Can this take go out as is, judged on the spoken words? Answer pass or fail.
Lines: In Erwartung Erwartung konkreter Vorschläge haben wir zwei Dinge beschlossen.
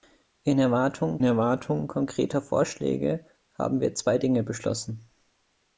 pass